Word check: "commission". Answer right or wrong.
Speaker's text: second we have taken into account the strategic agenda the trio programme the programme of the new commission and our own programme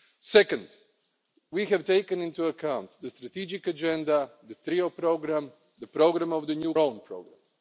wrong